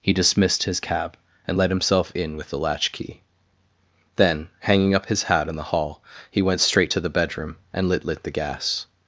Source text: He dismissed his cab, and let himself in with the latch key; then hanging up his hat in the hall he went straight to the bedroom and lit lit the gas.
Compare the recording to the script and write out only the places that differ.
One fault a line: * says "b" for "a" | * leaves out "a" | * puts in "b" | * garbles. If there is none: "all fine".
all fine